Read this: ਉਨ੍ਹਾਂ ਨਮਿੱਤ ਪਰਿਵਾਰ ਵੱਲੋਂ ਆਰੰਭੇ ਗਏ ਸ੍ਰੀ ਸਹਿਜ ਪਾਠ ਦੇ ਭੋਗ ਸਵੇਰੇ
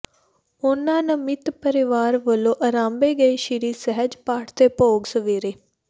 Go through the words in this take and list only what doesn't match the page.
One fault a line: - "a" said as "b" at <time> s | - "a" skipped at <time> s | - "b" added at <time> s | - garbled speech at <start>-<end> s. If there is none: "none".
none